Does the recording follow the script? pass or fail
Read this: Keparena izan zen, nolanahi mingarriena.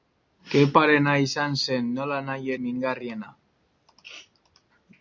pass